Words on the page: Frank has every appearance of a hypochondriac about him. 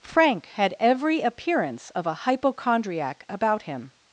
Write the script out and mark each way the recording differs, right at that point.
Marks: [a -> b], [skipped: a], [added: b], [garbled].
Frank [has -> had] every appearance of a hypochondriac about him.